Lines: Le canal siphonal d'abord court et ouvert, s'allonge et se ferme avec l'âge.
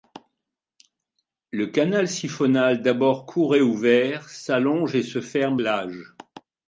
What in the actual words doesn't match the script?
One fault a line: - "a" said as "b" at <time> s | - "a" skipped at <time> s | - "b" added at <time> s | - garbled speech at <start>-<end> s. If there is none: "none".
- "avec" skipped at 5.6 s